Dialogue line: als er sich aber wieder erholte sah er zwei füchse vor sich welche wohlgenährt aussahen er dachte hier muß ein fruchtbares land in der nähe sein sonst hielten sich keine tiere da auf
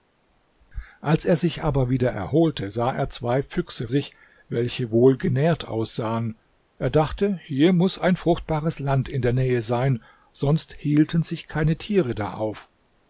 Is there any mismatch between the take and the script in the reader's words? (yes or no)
yes